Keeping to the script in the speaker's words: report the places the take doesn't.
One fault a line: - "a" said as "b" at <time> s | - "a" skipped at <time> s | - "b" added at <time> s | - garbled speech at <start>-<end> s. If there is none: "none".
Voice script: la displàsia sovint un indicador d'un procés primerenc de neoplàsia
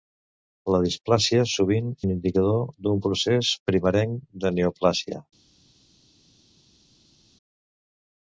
none